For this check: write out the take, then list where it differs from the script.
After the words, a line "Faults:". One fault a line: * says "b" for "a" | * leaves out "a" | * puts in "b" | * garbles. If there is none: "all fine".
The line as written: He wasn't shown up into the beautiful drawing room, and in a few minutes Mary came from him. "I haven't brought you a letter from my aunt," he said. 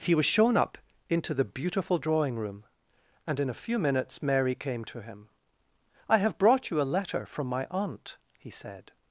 He was shown up into the beautiful drawing room, and in a few minutes Mary came to him. "I have brought you a letter from my aunt," he said.
Faults:
* says "was" for "wasn't"
* says "to" for "from"
* says "have" for "haven't"